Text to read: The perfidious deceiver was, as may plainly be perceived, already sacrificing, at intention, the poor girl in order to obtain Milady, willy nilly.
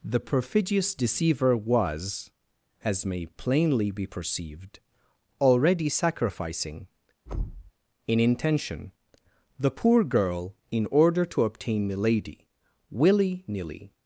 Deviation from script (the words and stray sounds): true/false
true